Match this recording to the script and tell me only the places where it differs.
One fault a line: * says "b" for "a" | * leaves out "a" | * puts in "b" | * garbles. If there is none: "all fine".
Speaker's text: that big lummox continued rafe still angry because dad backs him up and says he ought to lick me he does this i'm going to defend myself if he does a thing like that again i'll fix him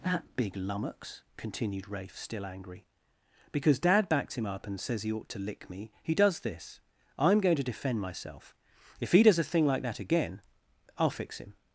all fine